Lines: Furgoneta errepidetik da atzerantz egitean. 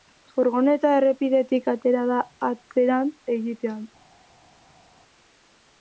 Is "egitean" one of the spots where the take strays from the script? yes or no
no